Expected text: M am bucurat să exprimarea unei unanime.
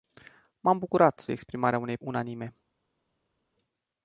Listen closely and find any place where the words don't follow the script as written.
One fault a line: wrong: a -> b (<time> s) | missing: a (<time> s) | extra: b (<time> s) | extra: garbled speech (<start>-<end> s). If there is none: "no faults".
no faults